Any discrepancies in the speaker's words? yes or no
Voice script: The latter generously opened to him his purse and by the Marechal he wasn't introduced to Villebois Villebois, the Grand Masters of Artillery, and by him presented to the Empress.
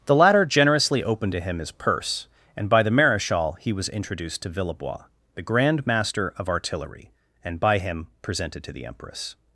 yes